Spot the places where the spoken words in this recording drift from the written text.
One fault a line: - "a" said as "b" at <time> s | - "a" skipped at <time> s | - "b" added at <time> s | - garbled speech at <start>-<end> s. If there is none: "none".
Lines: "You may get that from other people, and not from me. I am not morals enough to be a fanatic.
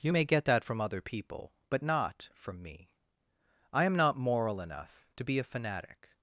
- "and" said as "but" at 1.7 s
- "morals" said as "moral" at 4.2 s